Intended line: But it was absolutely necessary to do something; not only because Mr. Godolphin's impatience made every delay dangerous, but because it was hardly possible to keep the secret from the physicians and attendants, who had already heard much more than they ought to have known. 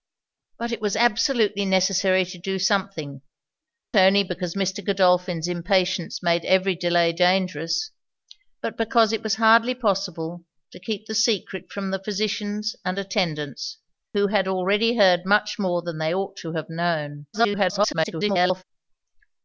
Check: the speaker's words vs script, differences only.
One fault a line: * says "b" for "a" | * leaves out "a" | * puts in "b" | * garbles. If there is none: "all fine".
* leaves out "not"
* garbles